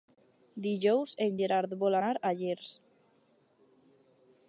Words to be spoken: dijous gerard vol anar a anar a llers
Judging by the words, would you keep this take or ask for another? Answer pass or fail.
fail